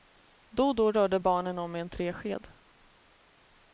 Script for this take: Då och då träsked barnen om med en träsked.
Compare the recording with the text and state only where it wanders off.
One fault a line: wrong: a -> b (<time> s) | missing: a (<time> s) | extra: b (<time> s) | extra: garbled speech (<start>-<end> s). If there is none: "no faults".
wrong: träsked -> rörde (0.9 s)